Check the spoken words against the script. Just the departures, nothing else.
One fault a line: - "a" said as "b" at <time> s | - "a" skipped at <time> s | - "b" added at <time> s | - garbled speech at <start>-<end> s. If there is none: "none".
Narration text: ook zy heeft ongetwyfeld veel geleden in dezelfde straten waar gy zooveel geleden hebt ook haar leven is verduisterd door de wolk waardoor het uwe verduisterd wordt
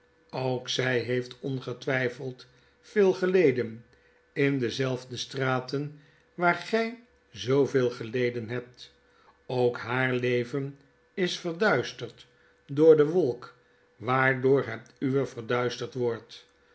none